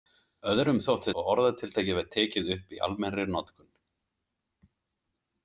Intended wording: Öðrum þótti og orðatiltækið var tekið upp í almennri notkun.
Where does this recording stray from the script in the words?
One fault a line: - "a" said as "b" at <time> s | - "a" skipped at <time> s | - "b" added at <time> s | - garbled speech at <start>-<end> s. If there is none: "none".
none